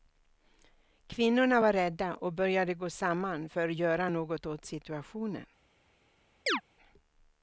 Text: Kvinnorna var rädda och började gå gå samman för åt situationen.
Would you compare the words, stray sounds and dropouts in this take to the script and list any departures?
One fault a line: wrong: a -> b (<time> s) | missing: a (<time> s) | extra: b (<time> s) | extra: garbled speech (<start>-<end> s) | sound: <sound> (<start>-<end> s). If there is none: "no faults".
missing: gå (2.9 s)
extra: göra något (3.7 s)
sound: chirp (6.5-6.6 s)